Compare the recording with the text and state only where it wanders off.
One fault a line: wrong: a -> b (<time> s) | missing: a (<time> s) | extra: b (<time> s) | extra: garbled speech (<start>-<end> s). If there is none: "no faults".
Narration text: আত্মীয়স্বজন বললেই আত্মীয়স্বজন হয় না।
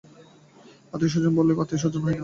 no faults